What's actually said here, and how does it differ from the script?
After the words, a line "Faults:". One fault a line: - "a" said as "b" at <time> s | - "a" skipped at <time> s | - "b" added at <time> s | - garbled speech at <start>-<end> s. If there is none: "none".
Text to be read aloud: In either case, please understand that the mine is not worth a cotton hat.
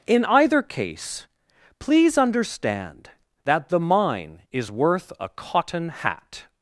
In either case, please understand that the mine is worth a cotton hat.
Faults:
- "not" skipped at 4.7 s